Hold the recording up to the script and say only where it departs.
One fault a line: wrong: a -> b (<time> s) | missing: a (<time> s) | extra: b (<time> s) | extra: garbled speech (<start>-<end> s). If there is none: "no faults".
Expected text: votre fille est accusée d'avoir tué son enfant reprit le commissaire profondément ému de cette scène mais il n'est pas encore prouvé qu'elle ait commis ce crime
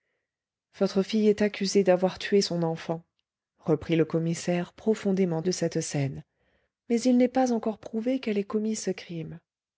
missing: ému (5.4 s)